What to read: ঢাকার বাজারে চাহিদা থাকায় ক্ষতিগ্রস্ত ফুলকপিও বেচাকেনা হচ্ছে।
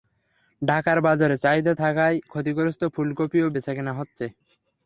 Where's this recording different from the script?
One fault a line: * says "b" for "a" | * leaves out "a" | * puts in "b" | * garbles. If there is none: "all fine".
all fine